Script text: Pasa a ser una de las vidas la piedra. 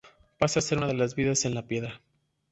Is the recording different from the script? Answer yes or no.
yes